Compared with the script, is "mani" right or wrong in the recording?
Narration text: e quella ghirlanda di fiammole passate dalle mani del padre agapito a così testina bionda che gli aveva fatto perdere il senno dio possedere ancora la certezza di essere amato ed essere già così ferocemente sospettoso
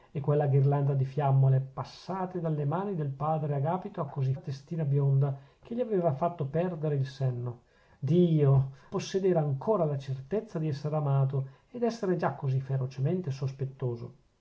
right